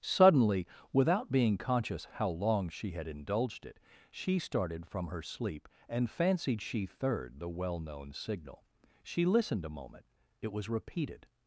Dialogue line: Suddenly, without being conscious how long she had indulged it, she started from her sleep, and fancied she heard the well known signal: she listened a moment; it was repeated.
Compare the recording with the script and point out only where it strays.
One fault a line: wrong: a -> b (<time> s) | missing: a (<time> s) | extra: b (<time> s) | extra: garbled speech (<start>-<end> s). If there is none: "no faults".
wrong: heard -> third (6.9 s)